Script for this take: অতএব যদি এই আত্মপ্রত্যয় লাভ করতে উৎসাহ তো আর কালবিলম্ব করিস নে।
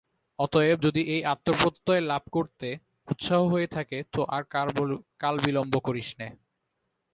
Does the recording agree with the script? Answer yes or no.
no